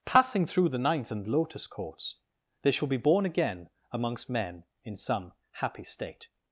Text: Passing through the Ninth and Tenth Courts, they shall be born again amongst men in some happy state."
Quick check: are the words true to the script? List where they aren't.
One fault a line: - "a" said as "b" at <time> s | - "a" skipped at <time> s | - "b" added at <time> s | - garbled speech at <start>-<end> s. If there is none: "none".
- "Tenth" said as "Lotus" at 1.3 s